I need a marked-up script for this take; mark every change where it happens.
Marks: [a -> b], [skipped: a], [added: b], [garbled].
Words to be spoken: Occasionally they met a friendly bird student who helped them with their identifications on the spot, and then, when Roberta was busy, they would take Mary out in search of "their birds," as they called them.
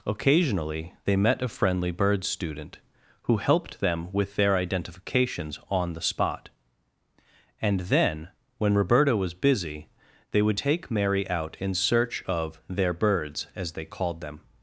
Occasionally they met a friendly bird student who helped them with their identifications on the spot, and then, when Roberta was busy, they would take Mary out in search of "their birds," as they called them.